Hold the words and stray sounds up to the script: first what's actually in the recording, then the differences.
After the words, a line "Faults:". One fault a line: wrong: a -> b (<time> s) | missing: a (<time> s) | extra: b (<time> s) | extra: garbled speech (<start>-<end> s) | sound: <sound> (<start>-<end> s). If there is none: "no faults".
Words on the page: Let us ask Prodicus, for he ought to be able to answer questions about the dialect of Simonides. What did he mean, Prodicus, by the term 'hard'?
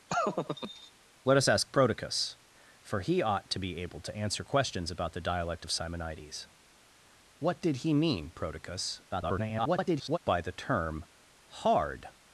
Let us ask Prodicus, for he ought to be able to answer questions about the dialect of Simonides. What did he mean, Prodicus, [garbled] by the term 'hard'?
Faults:
sound: laugh (0.1-0.9 s)
extra: garbled speech (9.1-10.2 s)